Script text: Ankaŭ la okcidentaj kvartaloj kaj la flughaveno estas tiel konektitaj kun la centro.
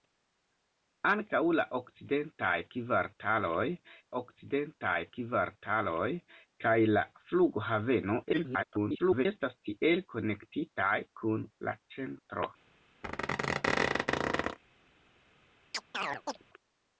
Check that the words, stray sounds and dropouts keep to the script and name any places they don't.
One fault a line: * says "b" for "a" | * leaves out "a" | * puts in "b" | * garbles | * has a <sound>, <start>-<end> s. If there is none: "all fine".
* puts in "okcidentaj kvartaloj"
* garbles
* has a squeak, 13.0-14.6 s
* has a chirp, 15.7-16.4 s